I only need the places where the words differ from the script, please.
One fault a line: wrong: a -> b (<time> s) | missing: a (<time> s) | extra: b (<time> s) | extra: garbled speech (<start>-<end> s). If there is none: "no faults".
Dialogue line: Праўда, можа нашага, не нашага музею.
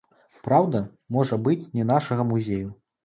wrong: нашага -> быць (1.5 s)